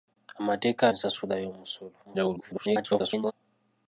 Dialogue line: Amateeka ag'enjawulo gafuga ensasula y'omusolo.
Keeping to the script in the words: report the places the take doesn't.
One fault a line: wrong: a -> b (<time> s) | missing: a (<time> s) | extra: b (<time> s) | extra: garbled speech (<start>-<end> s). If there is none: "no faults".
missing: ag'enjawulo gafuga (0.8 s)
extra: garbled speech (2.0-3.3 s)